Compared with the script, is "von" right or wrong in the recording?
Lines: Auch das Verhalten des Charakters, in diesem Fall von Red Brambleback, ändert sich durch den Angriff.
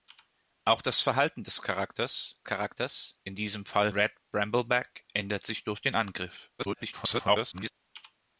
wrong